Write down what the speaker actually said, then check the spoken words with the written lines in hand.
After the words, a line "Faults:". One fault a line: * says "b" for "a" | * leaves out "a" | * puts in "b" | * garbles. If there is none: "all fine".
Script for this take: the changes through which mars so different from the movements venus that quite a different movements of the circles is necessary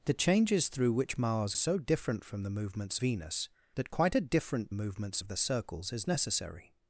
the changes through which mars so different from the movements venus that quite a different movements of the circles is necessary
Faults:
all fine